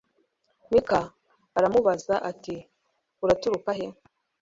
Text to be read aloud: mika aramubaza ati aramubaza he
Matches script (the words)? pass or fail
fail